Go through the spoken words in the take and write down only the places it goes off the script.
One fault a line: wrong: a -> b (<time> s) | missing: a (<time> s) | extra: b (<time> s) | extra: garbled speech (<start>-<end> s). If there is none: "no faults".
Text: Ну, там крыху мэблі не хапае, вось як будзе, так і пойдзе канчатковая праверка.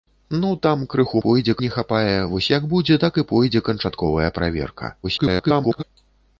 wrong: мэблі -> пойдзе (1.3 s)
extra: garbled speech (5.0-5.8 s)